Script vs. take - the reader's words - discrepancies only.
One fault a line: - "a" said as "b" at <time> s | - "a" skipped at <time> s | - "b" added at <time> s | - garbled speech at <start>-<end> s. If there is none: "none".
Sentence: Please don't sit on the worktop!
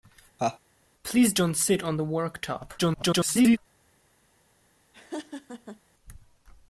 - garbled speech at 2.8-3.6 s